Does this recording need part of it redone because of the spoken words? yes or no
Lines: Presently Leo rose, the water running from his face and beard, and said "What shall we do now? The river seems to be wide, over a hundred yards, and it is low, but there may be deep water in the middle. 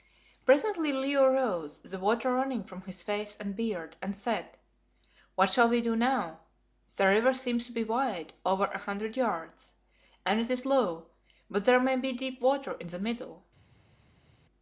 no